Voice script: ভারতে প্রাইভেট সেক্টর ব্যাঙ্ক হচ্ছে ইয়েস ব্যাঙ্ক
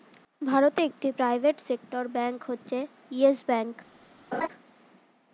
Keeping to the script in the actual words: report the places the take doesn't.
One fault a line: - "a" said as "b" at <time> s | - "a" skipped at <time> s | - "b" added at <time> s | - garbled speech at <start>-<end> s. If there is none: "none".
- "একটি" added at 0.9 s